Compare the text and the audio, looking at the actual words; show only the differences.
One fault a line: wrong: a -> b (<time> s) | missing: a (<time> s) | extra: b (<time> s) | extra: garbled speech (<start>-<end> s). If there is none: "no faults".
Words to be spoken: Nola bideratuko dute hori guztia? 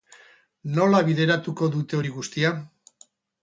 no faults